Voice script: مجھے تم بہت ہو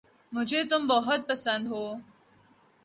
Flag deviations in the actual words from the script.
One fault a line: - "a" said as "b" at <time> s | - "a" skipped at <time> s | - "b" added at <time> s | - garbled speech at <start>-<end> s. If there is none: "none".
- "پسند" added at 1.3 s